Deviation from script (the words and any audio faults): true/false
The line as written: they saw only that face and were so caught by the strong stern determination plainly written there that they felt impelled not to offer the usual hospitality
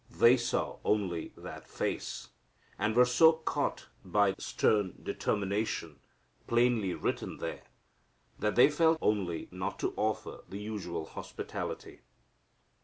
true